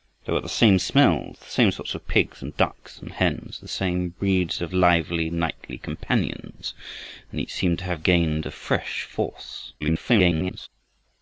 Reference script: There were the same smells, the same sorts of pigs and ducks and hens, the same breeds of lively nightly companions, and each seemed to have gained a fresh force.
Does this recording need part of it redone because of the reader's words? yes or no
yes